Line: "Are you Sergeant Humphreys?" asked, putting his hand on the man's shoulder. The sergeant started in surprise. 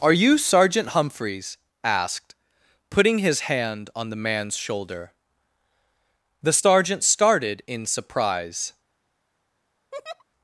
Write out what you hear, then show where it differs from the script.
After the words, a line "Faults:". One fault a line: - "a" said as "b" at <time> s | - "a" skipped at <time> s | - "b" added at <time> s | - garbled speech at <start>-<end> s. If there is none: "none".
"Are you Sergeant Humphreys?" asked, putting his hand on the man's shoulder. The sergeant started in surprise.
Faults:
none